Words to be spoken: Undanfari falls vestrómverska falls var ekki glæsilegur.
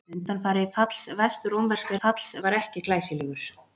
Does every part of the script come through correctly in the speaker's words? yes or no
yes